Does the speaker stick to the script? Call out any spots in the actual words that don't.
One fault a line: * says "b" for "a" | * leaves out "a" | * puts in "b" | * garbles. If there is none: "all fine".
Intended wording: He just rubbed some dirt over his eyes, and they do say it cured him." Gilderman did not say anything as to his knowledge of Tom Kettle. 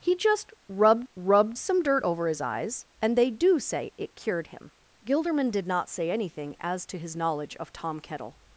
* puts in "rubbed"